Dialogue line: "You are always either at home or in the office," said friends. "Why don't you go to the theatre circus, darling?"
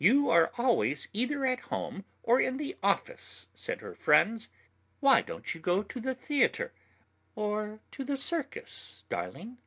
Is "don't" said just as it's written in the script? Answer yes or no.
yes